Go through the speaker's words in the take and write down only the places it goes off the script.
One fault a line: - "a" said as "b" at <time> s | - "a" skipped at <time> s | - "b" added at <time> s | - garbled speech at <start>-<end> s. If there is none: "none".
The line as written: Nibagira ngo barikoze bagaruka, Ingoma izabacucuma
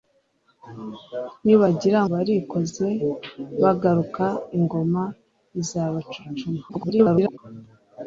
- "ngo" skipped at 2.0 s
- garbled speech at 6.7-7.4 s